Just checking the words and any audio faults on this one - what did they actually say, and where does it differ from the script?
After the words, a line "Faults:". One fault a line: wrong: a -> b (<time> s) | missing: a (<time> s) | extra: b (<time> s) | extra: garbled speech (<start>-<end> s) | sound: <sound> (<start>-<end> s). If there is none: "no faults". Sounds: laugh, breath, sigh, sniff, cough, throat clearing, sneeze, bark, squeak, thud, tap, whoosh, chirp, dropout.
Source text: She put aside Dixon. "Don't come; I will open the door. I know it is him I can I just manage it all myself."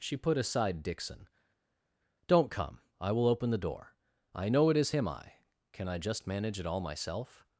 She put aside Dixon. "Don't come; I will open the door. I know it is him I can I just manage it all myself."
Faults:
no faults